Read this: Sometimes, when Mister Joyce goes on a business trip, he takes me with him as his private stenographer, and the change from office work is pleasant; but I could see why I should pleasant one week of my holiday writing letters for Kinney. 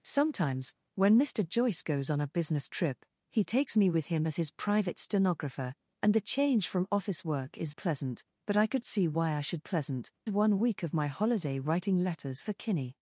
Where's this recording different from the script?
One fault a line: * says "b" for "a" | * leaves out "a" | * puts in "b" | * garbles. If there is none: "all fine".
all fine